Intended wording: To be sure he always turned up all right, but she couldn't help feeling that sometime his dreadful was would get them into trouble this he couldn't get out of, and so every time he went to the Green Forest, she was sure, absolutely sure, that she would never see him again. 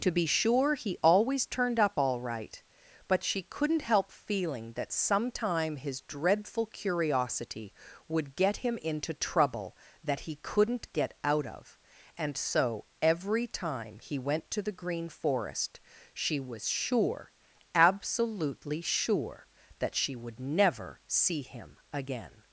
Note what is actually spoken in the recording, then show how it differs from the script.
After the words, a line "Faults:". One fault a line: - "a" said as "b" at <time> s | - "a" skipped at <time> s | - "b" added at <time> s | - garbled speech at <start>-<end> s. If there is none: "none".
To be sure he always turned up all right, but she couldn't help feeling that sometime his dreadful curiosity would get him into trouble that he couldn't get out of, and so every time he went to the Green Forest, she was sure, absolutely sure, that she would never see him again.
Faults:
- "was" said as "curiosity" at 6.7 s
- "them" said as "him" at 8.6 s
- "this" said as "that" at 10.0 s